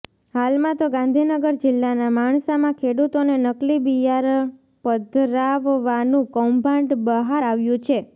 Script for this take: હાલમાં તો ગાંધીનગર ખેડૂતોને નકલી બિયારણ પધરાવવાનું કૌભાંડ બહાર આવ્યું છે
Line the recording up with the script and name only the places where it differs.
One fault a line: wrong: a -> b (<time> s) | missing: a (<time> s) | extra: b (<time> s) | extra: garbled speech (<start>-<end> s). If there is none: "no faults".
extra: જિલ્લાના માણસામાં (1.6 s)